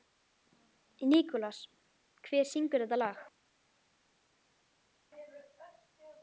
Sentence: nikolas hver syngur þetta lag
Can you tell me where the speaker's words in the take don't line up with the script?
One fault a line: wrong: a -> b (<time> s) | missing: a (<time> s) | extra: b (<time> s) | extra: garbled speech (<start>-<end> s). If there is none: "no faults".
no faults